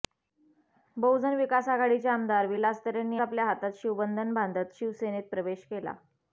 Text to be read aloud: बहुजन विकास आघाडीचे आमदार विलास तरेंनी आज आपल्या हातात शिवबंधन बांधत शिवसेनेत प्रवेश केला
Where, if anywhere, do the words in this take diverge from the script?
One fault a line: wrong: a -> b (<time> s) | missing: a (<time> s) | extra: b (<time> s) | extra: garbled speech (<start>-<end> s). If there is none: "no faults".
missing: आज (3.2 s)